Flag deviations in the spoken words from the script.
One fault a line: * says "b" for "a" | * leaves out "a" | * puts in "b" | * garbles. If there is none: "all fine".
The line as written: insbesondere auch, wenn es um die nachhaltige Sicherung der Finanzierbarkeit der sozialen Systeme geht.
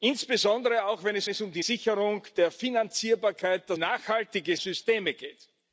* puts in "es"
* leaves out "nachhaltige"
* says "nachhaltige" for "sozialen"